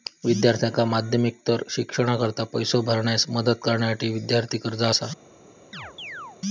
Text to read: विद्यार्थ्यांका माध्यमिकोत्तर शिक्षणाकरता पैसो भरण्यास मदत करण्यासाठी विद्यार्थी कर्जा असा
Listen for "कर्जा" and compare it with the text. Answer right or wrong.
right